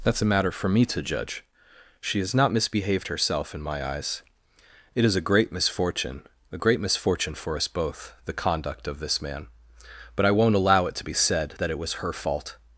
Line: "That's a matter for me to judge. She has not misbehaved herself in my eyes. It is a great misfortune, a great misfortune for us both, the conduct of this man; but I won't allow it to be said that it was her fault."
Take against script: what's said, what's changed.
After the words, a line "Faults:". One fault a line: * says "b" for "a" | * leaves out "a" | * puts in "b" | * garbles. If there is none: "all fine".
"That's a matter for me to judge. She has not misbehaved herself in my eyes. It is a great misfortune, a great misfortune for us both, the conduct of this man; but I won't allow it to be said that it was her fault."
Faults:
all fine